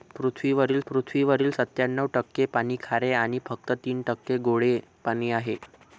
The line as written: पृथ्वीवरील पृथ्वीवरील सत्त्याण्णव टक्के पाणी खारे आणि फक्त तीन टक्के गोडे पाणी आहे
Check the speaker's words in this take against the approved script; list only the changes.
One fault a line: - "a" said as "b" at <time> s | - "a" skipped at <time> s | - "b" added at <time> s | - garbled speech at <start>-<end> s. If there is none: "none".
none